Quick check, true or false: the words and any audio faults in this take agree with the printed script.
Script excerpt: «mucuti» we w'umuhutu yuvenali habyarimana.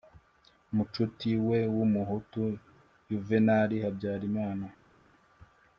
true